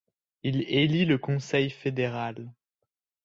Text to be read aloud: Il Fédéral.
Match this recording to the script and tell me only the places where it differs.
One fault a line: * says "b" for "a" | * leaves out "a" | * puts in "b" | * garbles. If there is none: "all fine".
* puts in "élit le Conseil"